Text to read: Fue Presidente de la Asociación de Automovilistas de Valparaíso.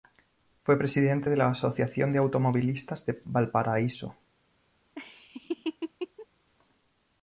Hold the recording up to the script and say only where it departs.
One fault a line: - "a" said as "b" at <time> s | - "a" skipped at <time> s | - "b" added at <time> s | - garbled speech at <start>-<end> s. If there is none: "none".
none